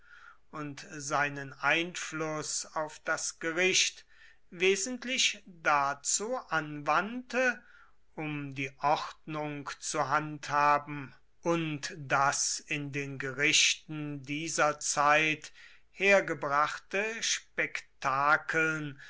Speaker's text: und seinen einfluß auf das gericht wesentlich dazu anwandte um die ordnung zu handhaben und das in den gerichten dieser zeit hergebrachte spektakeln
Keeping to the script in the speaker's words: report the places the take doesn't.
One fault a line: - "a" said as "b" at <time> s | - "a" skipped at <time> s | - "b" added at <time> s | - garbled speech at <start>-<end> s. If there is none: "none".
none